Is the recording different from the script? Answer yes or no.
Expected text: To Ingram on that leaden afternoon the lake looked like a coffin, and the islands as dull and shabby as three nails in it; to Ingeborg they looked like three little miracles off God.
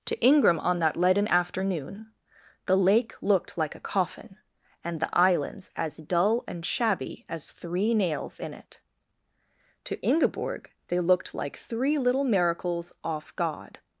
no